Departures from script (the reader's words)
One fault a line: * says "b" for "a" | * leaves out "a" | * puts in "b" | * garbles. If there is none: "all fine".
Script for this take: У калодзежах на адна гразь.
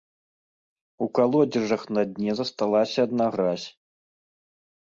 * puts in "дне засталася"